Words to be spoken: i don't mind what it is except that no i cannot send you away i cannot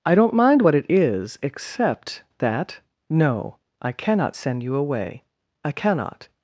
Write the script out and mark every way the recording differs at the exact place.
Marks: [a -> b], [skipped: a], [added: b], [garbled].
i don't mind what it is except that no i cannot send you away i cannot